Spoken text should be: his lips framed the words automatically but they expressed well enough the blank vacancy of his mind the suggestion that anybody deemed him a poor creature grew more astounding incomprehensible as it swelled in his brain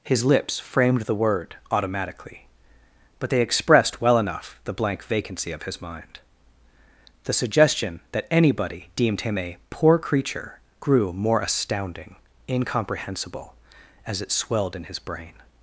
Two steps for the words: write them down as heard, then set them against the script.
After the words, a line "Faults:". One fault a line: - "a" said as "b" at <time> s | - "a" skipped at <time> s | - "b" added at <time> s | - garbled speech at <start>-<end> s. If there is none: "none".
his lips framed the word automatically but they expressed well enough the blank vacancy of his mind the suggestion that anybody deemed him a poor creature grew more astounding incomprehensible as it swelled in his brain
Faults:
- "words" said as "word" at 1.1 s